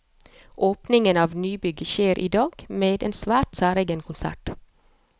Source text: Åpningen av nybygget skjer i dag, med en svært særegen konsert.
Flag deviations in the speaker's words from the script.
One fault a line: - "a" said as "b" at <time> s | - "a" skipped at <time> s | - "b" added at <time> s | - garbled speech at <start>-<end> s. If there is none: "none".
none